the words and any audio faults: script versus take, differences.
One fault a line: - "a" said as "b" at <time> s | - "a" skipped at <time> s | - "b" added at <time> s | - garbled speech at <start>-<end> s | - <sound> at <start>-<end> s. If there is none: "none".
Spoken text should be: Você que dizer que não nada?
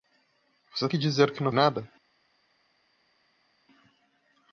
none